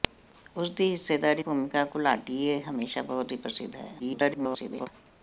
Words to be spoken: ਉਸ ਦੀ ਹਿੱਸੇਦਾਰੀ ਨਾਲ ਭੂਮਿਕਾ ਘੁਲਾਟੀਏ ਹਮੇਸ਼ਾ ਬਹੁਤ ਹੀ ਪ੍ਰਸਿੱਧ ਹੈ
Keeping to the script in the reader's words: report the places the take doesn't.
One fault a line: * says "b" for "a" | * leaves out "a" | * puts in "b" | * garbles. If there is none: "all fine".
* leaves out "ਨਾਲ"
* garbles